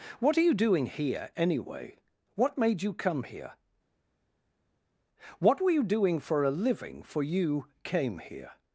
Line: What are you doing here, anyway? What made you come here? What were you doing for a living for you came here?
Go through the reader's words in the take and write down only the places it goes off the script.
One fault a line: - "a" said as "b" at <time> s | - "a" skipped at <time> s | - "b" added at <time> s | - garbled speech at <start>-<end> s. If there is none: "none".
none